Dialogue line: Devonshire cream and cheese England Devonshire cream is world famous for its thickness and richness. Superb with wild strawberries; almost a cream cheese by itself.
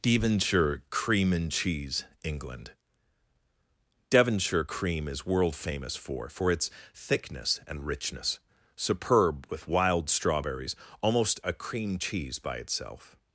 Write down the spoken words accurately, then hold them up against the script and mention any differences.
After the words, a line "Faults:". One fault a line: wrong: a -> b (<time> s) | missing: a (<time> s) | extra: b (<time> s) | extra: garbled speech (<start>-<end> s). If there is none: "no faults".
Devonshire cream and cheese England Devonshire cream is world famous for for its thickness and richness. Superb with wild strawberries; almost a cream cheese by itself.
Faults:
extra: for (6.3 s)